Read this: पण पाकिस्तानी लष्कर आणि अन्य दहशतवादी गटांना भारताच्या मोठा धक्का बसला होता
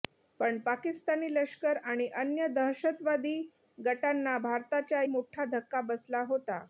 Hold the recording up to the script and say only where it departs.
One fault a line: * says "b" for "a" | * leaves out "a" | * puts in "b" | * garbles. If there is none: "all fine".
all fine